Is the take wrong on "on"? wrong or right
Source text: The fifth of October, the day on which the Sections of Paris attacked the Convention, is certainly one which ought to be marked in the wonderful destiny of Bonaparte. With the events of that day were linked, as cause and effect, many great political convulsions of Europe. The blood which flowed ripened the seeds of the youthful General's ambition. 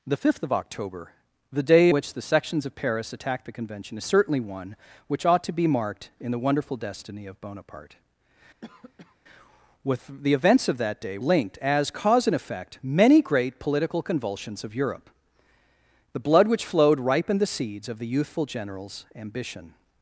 wrong